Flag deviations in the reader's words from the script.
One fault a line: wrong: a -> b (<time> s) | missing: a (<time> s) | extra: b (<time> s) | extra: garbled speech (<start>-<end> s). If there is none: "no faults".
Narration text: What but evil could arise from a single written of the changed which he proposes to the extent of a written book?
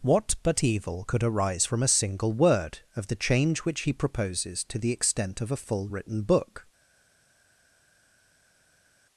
wrong: written -> word (2.3 s)
wrong: changed -> change (3.2 s)
extra: full (5.6 s)